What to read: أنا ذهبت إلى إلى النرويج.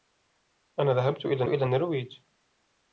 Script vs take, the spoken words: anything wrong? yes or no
no